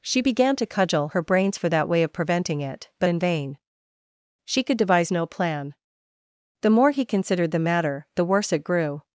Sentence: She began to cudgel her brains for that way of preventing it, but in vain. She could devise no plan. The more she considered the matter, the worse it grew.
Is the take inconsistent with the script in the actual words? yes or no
yes